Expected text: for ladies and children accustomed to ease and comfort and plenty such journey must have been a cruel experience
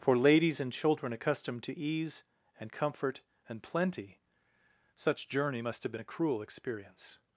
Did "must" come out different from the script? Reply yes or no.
no